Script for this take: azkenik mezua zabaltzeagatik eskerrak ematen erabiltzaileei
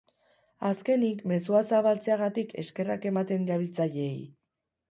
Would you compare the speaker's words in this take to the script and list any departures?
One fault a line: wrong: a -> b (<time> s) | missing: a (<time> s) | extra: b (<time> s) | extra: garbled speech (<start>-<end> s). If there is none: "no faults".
no faults